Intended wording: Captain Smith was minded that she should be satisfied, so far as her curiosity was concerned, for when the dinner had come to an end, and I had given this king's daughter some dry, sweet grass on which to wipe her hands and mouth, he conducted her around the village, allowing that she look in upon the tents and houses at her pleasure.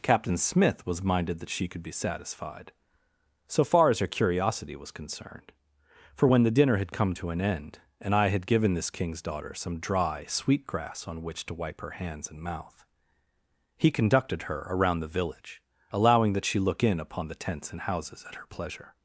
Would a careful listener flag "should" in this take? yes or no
yes